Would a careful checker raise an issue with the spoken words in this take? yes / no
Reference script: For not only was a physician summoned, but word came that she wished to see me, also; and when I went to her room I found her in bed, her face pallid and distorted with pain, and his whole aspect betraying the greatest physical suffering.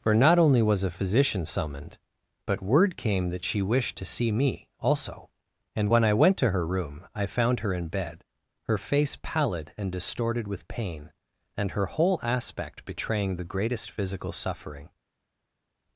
yes